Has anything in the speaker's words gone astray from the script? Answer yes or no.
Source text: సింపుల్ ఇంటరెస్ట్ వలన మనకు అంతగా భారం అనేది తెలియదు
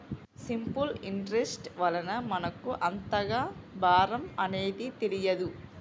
no